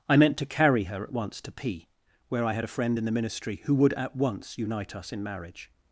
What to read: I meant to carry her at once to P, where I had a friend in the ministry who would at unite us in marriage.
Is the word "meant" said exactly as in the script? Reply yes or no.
yes